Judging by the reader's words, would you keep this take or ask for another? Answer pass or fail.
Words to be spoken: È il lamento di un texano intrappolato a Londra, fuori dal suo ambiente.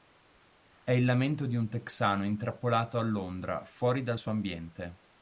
pass